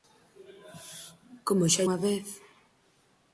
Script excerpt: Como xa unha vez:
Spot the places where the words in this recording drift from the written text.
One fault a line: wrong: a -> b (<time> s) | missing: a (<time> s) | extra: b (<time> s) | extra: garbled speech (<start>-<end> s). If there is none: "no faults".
no faults